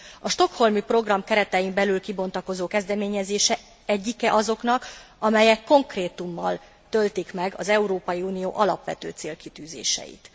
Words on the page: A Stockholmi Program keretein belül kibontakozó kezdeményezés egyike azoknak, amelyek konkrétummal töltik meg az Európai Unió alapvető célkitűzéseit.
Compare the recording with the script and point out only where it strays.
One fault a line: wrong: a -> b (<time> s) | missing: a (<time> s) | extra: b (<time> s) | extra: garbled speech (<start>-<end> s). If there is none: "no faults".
no faults